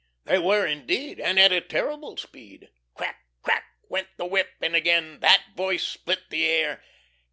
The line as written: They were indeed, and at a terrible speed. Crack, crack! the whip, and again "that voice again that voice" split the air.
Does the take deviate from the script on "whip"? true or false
false